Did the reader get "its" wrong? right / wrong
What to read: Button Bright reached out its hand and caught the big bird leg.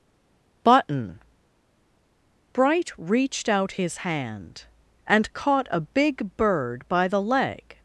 wrong